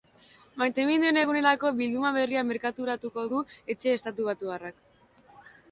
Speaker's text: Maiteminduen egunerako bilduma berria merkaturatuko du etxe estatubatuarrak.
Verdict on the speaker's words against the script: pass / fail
pass